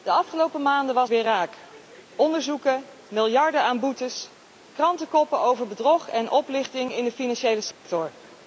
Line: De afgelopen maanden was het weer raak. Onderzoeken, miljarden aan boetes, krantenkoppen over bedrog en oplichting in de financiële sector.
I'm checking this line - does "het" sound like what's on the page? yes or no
no